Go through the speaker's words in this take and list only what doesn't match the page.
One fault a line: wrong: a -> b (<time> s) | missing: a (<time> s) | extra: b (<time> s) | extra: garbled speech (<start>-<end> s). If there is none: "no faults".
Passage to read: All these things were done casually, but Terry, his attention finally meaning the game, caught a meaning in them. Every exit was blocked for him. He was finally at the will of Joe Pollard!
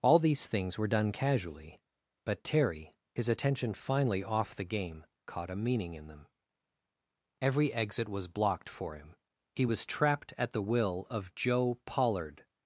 wrong: meaning -> off (4.2 s)
wrong: finally -> trapped (9.9 s)